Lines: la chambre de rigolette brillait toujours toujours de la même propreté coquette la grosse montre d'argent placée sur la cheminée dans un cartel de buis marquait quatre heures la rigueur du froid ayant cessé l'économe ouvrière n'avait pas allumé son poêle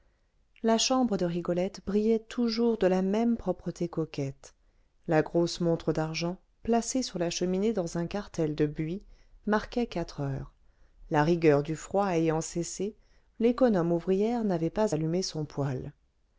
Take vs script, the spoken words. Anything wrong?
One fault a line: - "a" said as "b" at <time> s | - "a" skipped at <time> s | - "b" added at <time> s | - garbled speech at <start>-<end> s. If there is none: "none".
- "toujours" skipped at 2.8 s